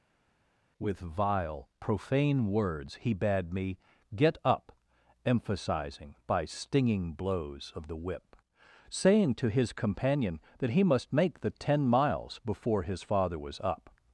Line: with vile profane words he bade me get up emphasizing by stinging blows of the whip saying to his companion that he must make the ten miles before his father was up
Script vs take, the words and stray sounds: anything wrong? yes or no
no